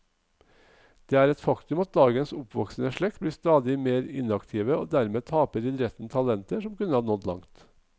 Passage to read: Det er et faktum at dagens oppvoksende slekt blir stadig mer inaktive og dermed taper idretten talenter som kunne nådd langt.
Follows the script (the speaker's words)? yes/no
yes